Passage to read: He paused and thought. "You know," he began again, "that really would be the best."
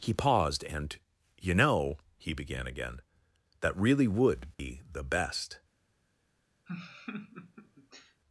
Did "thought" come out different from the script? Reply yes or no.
yes